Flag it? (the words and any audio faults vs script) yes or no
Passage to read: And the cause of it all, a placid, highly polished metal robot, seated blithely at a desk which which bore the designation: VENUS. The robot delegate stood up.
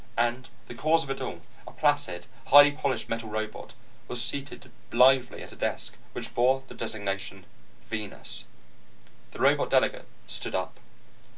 yes